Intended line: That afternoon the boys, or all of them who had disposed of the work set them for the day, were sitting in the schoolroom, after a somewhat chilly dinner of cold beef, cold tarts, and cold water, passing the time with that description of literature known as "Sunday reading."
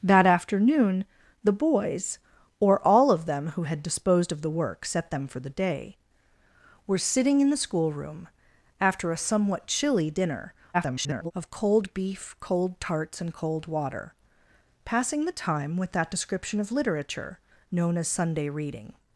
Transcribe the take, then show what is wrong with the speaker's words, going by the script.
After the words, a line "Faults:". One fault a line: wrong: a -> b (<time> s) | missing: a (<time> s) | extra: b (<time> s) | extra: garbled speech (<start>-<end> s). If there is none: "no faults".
That afternoon the boys, or all of them who had disposed of the work set them for the day, were sitting in the schoolroom, after a somewhat chilly dinner [garbled] of cold beef, cold tarts, and cold water, passing the time with that description of literature known as "Sunday reading."
Faults:
extra: garbled speech (10.7-11.3 s)